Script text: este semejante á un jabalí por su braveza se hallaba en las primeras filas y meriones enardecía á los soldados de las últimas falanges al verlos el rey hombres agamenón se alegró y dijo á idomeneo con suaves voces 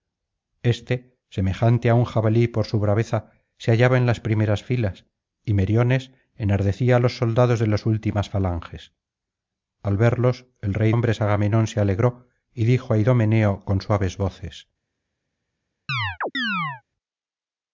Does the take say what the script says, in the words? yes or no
yes